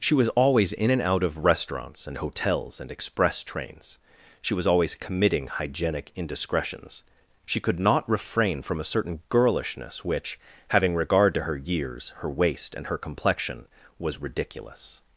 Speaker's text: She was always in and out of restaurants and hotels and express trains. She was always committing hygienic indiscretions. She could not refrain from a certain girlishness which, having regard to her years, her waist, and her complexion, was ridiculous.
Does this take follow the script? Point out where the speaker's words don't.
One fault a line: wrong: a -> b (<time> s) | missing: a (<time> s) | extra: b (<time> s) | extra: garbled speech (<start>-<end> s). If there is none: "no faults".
no faults